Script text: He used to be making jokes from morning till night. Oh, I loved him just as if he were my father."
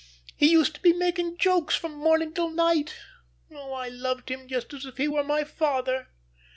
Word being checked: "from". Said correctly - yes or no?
yes